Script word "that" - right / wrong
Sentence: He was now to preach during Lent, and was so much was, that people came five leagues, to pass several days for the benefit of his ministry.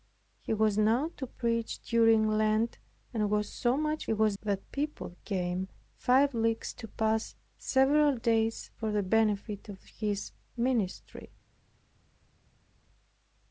right